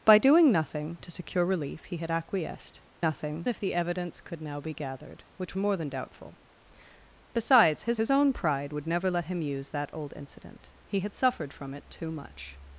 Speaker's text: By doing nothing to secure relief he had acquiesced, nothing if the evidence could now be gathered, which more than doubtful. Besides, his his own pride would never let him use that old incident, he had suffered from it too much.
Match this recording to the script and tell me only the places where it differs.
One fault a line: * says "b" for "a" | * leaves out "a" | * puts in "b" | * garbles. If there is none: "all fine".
all fine